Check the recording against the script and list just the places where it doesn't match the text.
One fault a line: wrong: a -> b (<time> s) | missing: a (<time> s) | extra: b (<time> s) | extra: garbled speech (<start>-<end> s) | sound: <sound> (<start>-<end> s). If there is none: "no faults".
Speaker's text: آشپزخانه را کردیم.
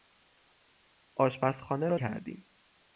no faults